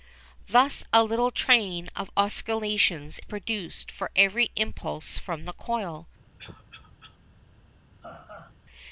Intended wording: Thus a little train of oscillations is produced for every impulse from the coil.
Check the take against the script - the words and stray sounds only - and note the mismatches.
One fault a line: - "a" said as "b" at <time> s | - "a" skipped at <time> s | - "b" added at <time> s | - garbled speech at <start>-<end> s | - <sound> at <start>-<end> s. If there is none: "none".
- "is" skipped at 3.2 s
- cough at 6.4-7.2 s
- laugh at 8.0-8.6 s